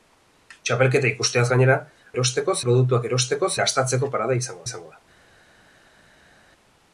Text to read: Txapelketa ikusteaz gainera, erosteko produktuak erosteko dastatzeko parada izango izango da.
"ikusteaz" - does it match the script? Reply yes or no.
yes